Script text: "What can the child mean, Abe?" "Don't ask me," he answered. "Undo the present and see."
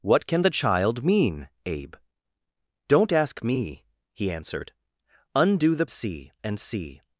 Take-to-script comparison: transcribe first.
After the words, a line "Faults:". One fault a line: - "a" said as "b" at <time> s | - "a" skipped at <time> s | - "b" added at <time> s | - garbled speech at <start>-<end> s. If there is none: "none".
"What can the child mean, Abe?" "Don't ask me," he answered. "Undo the see and see."
Faults:
- "present" said as "see" at 5.9 s